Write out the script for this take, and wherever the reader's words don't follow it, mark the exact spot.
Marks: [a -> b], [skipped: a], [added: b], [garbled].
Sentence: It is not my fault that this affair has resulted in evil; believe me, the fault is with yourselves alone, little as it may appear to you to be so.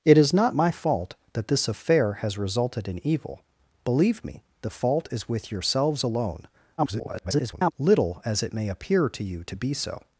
It is not my fault that this affair has resulted in evil; believe me, the fault is with yourselves alone, [garbled] little as it may appear to you to be so.